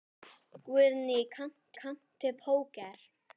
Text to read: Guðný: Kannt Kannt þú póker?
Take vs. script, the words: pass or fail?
pass